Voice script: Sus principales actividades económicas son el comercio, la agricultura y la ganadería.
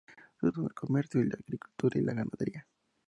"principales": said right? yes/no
no